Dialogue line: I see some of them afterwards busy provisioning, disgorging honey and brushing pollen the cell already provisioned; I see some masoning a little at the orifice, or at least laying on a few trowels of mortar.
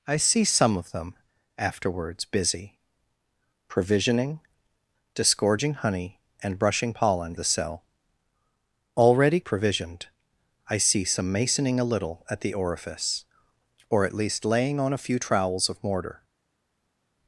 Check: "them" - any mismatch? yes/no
no